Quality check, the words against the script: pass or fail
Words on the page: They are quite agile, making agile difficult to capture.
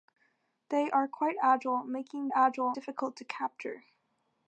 pass